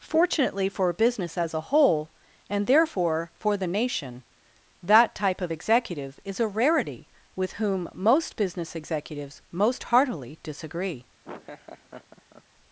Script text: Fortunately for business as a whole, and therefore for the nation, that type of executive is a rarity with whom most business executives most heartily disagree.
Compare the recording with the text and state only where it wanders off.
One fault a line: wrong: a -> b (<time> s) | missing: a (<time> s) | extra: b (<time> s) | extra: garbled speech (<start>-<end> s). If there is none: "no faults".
no faults